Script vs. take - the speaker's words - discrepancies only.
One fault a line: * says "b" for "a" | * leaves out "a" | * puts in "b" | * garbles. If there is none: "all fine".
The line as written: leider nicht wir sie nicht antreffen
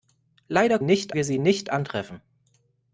all fine